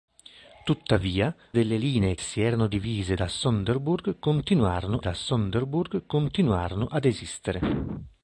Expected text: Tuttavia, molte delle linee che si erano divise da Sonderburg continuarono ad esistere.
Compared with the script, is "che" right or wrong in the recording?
wrong